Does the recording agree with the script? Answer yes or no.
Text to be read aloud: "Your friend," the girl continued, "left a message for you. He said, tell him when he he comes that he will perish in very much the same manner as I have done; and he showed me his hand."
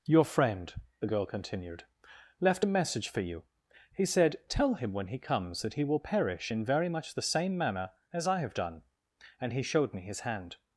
no